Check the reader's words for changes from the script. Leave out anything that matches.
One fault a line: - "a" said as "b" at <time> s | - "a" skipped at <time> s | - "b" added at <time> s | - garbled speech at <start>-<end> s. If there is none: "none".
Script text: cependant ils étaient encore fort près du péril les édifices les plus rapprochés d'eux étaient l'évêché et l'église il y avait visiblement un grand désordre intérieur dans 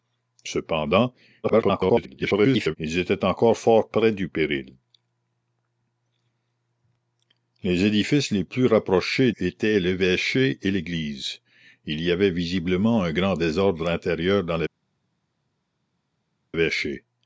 - garbled speech at 1.4-2.8 s
- "d'eux" skipped at 9.3 s